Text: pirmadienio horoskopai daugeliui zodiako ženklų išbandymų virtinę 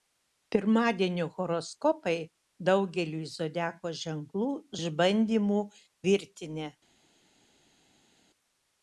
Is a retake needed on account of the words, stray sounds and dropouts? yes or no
no